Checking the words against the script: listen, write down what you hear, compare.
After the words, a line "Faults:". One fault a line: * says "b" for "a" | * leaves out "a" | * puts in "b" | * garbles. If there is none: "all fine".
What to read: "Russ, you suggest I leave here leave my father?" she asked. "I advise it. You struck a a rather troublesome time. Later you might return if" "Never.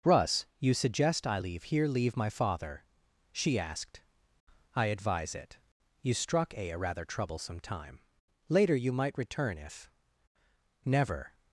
"Russ, you suggest I leave here leave my father?" she asked. "I advise it. You struck a a rather troublesome time. Later you might return if" "Never.
Faults:
all fine